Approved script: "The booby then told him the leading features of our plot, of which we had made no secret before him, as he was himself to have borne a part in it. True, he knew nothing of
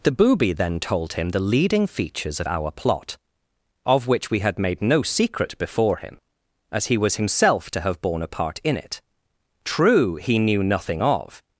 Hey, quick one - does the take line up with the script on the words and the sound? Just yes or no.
yes